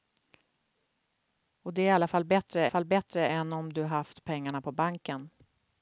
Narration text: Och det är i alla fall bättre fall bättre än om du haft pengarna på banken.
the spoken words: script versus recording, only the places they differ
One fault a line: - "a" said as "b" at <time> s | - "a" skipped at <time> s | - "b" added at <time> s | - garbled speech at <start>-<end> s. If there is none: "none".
none